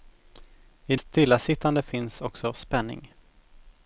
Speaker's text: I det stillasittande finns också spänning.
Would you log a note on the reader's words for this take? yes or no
yes